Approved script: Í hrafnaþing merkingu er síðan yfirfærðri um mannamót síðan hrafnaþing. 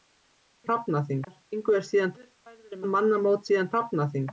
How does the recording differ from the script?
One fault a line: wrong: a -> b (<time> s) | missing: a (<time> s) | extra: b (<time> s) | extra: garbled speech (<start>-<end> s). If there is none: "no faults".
no faults